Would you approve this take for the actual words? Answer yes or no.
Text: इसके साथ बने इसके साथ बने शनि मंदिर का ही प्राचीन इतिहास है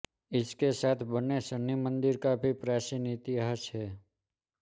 no